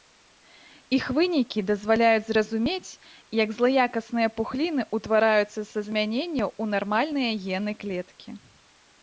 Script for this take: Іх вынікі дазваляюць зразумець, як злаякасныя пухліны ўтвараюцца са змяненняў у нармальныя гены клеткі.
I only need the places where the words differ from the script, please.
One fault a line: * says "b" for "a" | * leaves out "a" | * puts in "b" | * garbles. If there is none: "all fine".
all fine